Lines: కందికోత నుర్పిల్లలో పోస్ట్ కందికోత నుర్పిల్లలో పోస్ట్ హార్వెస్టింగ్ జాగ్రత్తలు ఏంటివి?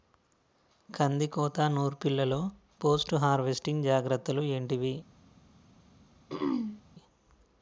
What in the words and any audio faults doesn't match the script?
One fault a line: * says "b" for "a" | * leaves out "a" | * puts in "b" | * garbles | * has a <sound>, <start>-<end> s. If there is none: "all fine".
* leaves out "కందికోత నుర్పిల్లలో పోస్ట్"
* has a throat clearing, 6.3-6.8 s